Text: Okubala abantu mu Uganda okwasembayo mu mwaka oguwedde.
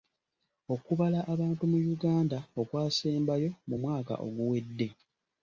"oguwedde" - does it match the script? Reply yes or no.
yes